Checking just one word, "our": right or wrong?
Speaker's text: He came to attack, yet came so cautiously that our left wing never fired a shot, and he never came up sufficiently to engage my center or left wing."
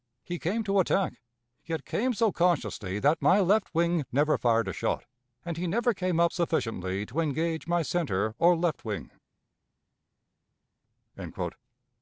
wrong